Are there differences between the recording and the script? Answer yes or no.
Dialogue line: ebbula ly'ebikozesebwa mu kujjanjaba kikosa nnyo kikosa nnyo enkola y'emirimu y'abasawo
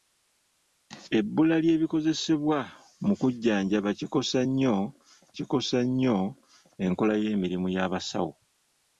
no